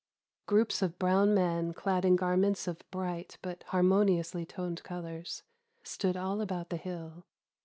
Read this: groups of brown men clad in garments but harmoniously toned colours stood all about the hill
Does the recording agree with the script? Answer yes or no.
no